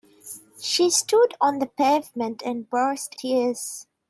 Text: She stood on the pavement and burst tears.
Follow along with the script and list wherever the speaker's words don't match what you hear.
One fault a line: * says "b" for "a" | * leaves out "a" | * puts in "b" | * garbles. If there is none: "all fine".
all fine